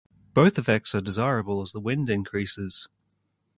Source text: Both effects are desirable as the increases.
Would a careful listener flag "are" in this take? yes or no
no